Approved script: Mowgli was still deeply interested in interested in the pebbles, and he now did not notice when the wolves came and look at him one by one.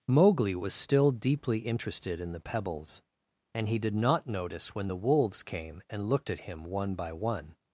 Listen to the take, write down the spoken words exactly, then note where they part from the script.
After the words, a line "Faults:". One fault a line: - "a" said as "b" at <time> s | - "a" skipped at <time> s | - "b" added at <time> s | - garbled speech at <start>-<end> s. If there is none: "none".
Mowgli was still deeply interested in the pebbles, and he did not notice when the wolves came and looked at him one by one.
Faults:
- "interested in" skipped at 2.3 s
- "now" skipped at 3.8 s
- "look" said as "looked" at 6.1 s